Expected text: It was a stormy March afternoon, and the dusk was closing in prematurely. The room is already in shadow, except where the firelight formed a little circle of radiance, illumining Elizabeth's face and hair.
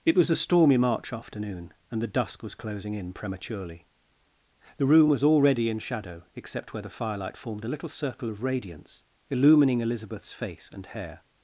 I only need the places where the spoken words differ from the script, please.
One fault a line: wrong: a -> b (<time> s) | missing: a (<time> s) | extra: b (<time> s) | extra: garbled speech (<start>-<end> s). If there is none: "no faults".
wrong: is -> was (5.1 s)